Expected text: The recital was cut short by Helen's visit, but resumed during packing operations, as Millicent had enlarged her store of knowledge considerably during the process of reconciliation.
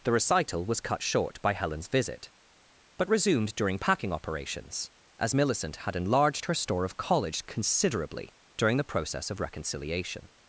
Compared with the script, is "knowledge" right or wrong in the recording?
wrong